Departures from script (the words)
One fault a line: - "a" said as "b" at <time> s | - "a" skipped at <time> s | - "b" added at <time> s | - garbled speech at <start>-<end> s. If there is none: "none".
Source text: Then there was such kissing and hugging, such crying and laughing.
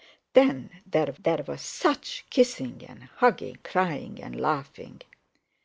- "there" added at 1.2 s
- "such" skipped at 3.6 s